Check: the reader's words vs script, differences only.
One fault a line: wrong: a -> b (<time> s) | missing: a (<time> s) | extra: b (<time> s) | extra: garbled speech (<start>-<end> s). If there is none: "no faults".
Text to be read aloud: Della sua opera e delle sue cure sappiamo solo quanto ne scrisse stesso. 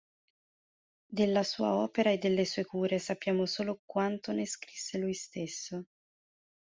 extra: lui (5.0 s)